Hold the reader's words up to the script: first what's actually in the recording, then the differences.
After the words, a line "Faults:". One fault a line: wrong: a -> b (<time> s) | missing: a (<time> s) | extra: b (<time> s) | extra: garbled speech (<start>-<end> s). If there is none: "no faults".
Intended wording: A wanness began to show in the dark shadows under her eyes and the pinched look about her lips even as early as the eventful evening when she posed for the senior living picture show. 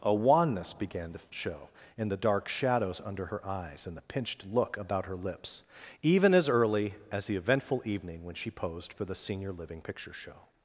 A wanness began to show in the dark shadows under her eyes and the pinched look about her lips even as early as the eventful evening when she posed for the senior living picture show.
Faults:
no faults